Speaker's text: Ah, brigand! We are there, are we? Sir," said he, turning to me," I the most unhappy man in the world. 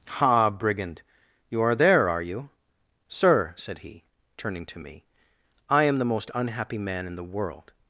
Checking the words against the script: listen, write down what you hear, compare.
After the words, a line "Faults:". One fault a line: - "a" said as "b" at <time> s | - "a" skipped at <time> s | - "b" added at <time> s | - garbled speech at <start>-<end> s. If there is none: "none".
Ah, brigand! You are there, are you? Sir," said he, turning to me," I am the most unhappy man in the world.
Faults:
- "We" said as "You" at 1.5 s
- "we" said as "you" at 2.2 s
- "am" added at 5.8 s